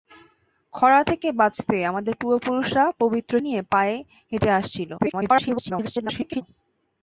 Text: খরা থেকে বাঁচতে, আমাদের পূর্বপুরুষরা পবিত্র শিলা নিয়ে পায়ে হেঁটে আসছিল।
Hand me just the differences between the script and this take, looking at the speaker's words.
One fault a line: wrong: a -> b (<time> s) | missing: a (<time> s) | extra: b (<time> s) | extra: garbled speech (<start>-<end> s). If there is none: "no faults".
missing: শিলা (3.3 s)
extra: garbled speech (5.0-6.4 s)